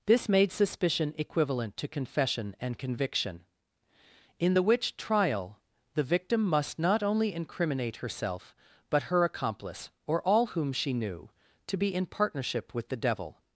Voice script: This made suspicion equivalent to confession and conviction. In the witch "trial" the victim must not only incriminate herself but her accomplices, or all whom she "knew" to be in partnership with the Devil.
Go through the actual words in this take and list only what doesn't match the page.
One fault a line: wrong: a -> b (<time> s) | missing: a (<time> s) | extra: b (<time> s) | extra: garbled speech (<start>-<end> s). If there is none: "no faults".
wrong: accomplices -> accomplice (9.2 s)